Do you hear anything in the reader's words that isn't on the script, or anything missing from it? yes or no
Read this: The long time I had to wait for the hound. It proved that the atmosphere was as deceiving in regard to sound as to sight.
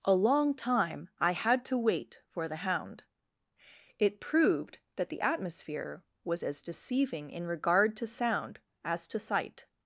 yes